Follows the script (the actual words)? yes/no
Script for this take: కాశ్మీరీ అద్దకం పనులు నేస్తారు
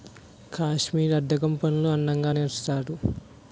no